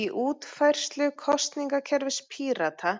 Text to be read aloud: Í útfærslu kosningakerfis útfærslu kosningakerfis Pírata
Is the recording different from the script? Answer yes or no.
yes